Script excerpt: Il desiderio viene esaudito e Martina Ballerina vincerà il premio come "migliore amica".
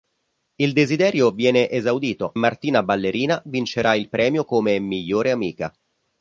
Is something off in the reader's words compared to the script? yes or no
yes